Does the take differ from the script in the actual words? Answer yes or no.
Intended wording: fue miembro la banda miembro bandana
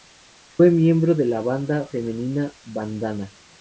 yes